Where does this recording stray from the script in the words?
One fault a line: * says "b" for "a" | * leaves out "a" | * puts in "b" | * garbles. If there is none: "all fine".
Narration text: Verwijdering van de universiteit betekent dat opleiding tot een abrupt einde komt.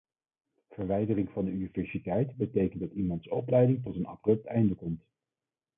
* puts in "iemands"